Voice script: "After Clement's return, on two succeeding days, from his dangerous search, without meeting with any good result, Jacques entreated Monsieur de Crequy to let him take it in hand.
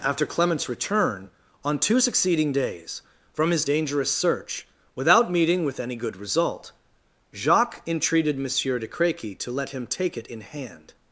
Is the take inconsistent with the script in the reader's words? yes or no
no